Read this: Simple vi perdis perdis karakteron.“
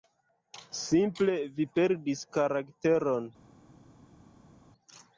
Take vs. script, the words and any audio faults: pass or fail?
fail